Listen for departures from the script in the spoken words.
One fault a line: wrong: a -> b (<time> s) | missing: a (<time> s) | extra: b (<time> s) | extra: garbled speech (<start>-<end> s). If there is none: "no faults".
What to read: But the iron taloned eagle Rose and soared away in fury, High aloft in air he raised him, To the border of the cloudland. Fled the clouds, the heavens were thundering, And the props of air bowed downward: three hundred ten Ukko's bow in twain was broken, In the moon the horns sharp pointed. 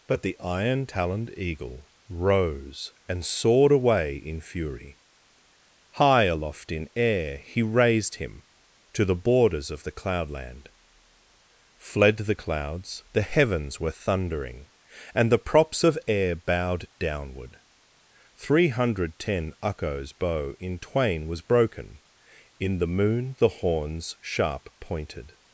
wrong: border -> borders (9.2 s)